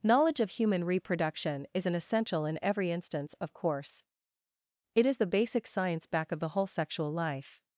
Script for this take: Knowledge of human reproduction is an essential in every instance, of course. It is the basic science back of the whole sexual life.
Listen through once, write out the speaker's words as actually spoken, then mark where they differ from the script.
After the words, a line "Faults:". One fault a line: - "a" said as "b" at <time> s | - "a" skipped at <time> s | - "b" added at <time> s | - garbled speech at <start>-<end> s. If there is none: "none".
Knowledge of human reproduction is an essential in every instance, of course. It is the basic science back of the whole sexual life.
Faults:
none